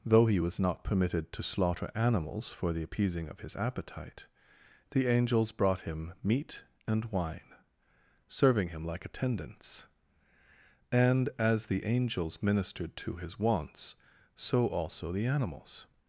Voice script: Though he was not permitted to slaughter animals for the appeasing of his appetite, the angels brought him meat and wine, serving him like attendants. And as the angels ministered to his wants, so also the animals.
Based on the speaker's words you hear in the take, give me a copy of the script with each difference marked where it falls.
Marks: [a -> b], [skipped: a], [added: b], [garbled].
Though he was not permitted to slaughter animals for the appeasing of his appetite, the angels brought him meat and wine, serving him like attendants. And as the angels ministered to his wants, so also the animals.